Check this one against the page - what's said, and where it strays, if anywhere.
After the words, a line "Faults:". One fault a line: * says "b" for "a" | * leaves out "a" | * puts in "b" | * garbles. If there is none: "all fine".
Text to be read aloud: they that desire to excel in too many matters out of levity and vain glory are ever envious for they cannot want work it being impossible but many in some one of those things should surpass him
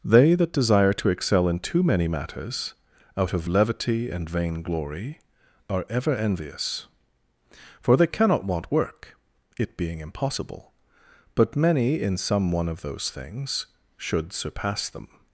they that desire to excel in too many matters out of levity and vain glory are ever envious for they cannot want work it being impossible but many in some one of those things should surpass them
Faults:
* says "them" for "him"